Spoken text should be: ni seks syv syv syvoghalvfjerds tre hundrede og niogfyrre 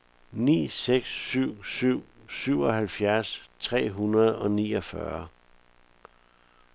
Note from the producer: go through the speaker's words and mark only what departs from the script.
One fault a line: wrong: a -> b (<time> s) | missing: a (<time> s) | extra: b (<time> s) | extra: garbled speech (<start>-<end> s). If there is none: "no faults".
no faults